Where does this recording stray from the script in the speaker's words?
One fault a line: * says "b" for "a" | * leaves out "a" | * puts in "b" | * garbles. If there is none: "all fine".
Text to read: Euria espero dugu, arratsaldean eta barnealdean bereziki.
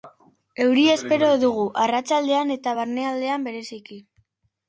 all fine